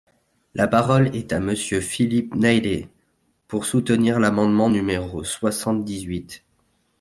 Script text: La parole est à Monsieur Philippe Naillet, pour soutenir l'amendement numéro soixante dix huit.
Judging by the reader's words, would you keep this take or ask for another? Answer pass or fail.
pass